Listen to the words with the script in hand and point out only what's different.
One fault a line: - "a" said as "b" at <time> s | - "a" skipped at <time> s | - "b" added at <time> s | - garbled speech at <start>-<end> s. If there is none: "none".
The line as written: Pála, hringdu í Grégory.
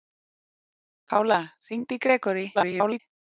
- garbled speech at 2.5-3.0 s